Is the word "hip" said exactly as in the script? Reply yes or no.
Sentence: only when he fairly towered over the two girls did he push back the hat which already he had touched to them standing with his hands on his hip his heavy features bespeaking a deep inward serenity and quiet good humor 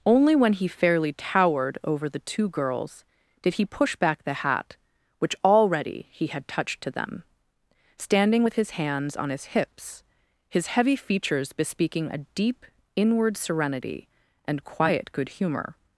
no